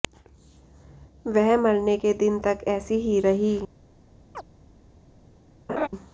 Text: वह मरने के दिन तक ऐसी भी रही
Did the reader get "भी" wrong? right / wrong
wrong